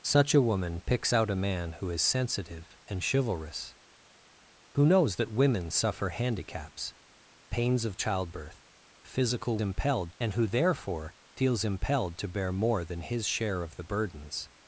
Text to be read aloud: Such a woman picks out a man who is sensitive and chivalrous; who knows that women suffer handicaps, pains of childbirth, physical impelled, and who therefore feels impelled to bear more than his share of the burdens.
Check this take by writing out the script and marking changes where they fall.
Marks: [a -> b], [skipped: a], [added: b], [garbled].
Such a woman picks out a man who is sensitive and chivalrous; who knows that women suffer handicaps, pains of childbirth, physical impelled, and who therefore feels impelled to bear more than his share of the burdens.